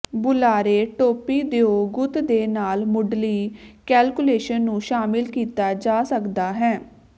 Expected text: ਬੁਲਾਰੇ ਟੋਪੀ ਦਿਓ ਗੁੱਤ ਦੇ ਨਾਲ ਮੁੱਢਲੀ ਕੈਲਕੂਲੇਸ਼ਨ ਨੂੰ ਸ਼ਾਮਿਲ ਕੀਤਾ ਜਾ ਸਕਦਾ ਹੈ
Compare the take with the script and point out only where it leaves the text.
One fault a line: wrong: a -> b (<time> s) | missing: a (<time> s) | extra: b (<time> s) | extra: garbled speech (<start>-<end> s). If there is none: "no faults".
no faults